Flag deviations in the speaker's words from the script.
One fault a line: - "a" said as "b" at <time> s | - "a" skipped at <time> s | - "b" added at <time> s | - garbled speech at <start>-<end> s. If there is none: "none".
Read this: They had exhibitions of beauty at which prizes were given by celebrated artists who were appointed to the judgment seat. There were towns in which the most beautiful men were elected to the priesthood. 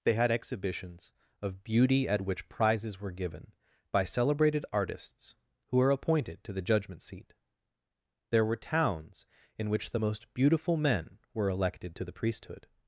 none